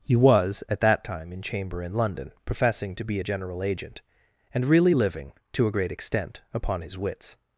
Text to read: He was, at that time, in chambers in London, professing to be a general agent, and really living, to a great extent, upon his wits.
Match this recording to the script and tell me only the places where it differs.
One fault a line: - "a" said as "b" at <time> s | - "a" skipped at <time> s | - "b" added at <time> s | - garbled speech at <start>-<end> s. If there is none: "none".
- "chambers" said as "chamber" at 1.4 s